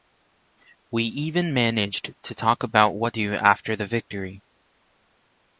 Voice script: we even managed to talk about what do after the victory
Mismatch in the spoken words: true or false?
false